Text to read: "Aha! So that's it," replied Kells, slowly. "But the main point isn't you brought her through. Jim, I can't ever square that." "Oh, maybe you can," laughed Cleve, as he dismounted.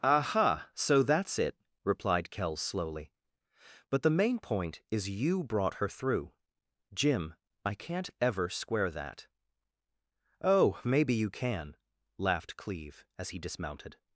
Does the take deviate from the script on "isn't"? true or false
true